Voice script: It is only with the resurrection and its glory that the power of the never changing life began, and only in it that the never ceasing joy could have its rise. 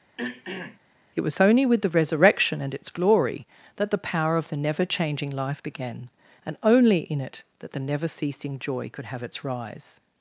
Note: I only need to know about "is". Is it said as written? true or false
false